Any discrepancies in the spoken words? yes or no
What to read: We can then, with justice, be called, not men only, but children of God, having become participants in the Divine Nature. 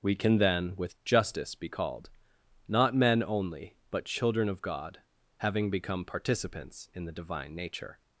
no